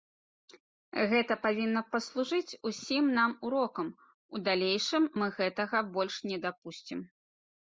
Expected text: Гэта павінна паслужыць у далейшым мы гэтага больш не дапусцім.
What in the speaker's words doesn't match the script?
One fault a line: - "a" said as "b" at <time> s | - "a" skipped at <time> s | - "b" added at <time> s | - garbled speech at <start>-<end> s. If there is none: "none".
- "усім нам урокам" added at 2.7 s